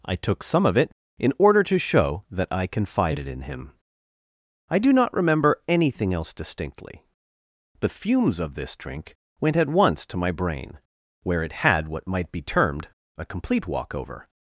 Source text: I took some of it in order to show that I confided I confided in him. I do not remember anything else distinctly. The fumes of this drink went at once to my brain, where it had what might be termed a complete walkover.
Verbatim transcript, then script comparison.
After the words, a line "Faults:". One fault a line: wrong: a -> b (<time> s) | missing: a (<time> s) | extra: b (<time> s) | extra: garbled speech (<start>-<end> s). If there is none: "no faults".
I took some of it in order to show that I confided in him. I do not remember anything else distinctly. The fumes of this drink went at once to my brain, where it had what might be termed a complete walkover.
Faults:
missing: I confided (3.3 s)